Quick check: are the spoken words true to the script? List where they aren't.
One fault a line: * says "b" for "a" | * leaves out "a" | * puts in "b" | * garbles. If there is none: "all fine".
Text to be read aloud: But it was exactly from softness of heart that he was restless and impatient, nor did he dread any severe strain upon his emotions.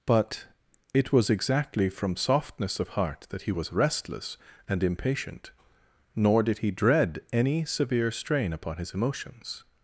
all fine